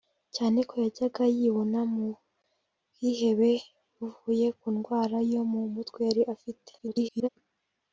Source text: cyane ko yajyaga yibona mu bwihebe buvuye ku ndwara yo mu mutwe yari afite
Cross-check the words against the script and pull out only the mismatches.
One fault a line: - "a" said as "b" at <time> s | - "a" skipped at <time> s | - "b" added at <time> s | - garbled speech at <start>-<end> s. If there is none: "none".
- garbled speech at 6.8-7.3 s